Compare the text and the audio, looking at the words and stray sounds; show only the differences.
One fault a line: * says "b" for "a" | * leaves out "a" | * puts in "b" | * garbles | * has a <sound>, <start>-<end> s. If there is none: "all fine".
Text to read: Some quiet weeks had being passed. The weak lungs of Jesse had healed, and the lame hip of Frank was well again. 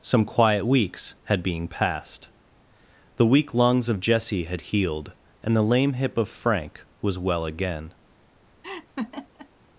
* has a laugh, 8.6-9.5 s